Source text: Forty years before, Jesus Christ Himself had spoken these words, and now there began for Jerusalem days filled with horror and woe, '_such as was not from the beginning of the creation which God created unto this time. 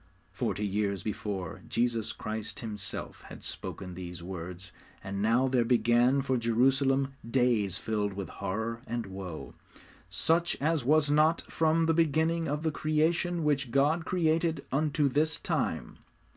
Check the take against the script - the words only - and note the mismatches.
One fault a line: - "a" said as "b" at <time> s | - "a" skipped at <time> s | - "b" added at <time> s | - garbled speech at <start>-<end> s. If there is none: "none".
none